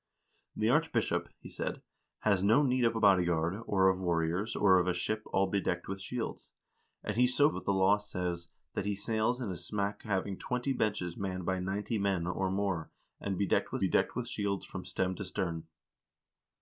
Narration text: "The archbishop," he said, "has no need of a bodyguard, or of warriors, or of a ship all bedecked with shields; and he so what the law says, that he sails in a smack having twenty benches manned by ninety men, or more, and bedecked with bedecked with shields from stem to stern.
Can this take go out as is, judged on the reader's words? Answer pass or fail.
pass